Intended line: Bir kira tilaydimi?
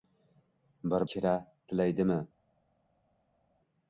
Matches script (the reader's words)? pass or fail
pass